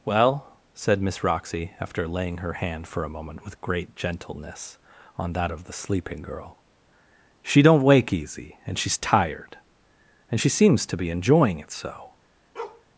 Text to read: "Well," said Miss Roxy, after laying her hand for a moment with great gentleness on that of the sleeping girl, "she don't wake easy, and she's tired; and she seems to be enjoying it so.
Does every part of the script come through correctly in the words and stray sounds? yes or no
no